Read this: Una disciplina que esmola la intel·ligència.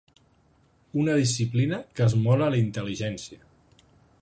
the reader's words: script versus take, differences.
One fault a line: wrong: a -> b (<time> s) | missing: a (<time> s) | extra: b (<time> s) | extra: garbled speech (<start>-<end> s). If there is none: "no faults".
no faults